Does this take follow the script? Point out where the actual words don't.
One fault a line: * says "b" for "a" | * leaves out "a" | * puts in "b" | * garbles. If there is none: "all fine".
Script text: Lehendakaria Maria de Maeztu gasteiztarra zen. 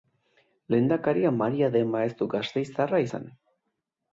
all fine